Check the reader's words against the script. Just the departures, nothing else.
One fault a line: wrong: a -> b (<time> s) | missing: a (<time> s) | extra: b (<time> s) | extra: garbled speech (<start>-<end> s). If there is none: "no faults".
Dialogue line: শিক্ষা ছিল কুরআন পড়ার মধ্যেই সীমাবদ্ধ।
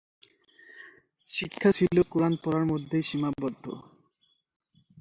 no faults